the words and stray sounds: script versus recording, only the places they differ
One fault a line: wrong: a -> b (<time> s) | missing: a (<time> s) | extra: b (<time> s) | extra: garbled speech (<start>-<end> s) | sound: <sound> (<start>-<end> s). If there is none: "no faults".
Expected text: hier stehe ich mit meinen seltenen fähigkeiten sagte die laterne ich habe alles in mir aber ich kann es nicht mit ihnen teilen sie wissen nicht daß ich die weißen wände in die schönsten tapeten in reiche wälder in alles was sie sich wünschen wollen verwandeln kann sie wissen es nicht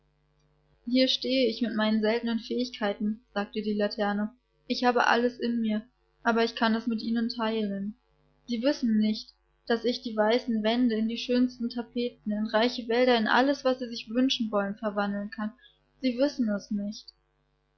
missing: nicht (6.9 s)